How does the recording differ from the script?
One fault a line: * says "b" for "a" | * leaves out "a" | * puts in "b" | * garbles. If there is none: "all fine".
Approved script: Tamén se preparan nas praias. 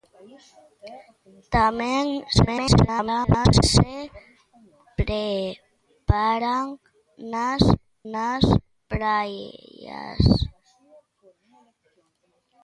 * garbles
* puts in "nas"